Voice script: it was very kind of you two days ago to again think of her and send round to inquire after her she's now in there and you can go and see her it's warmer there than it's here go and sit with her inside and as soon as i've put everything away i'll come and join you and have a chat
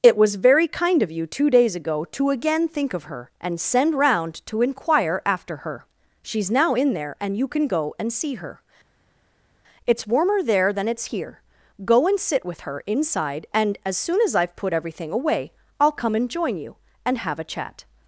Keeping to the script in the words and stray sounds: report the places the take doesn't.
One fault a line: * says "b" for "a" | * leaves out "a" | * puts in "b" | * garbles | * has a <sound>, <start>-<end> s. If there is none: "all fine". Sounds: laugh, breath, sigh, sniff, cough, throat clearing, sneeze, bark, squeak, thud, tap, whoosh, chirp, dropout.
all fine